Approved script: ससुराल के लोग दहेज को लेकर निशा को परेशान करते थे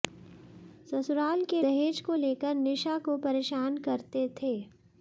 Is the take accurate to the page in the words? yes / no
no